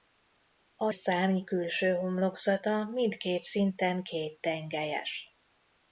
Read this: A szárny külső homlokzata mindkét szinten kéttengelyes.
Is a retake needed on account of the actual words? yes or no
no